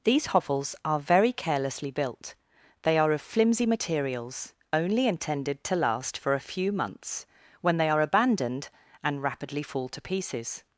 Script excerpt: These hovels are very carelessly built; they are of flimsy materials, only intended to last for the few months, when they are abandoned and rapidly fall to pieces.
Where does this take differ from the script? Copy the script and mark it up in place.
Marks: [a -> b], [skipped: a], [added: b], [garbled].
These hovels are very carelessly built; they are of flimsy materials, only intended to last for [the -> a] few months, when they are abandoned and rapidly fall to pieces.